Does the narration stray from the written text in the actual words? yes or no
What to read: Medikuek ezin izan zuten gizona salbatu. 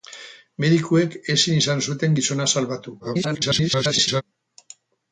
yes